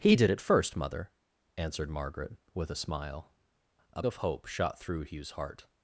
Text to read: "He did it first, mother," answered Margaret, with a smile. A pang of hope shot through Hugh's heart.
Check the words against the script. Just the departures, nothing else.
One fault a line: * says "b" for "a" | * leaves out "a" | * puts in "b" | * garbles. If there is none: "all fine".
* leaves out "pang"